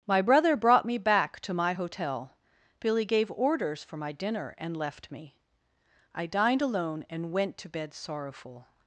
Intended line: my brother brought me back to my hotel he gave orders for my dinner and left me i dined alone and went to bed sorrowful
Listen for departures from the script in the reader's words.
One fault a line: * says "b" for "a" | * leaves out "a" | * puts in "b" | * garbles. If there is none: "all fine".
* says "billy" for "he"